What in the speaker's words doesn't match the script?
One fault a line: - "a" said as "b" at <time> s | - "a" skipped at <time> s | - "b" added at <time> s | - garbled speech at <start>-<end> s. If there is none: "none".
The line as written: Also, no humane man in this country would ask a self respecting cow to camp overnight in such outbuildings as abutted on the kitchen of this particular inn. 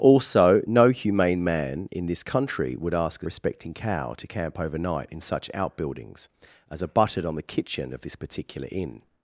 - "self" skipped at 3.3 s